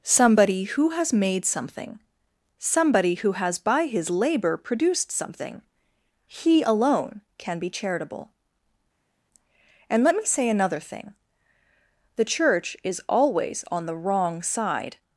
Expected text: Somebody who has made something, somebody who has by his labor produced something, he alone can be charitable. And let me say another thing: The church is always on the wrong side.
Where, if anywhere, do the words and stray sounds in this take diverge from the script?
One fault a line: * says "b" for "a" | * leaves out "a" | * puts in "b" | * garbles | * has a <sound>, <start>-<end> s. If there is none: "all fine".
all fine